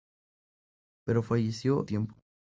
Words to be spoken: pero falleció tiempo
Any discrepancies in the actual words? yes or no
no